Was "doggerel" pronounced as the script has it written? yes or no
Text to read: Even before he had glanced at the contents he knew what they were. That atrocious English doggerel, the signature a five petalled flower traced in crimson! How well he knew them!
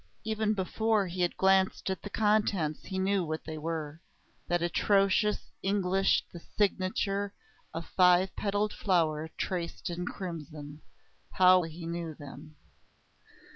no